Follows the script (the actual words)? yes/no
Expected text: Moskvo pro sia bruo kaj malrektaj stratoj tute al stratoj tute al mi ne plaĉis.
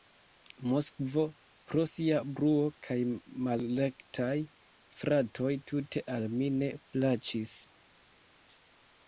no